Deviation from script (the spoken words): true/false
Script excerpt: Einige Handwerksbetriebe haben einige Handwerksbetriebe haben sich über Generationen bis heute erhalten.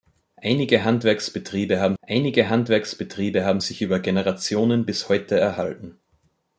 false